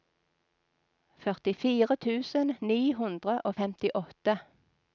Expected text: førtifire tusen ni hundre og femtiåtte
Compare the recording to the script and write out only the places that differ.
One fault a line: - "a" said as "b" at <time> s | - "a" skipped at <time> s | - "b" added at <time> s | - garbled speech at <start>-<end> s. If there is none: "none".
none